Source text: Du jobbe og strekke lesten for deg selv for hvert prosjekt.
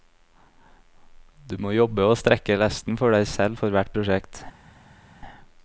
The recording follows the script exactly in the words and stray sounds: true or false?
false